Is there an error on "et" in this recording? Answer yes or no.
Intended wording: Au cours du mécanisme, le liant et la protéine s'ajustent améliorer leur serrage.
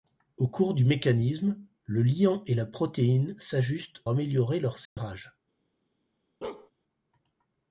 no